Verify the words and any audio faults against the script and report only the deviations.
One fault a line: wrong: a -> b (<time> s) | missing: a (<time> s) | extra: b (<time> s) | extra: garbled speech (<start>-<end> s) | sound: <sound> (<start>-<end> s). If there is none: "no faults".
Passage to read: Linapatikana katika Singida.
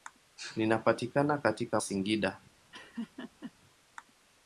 sound: laugh (2.7-3.5 s)